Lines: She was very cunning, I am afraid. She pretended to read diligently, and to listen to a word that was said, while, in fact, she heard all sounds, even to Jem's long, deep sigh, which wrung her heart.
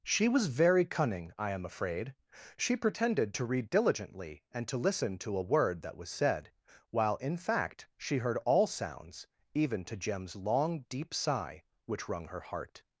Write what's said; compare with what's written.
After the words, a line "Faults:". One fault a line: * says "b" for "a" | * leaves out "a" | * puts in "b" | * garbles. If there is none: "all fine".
She was very cunning, I am afraid. She pretended to read diligently, and to listen to a word that was said, while, in fact, she heard all sounds, even to Jem's long, deep sigh, which wrung her heart.
Faults:
all fine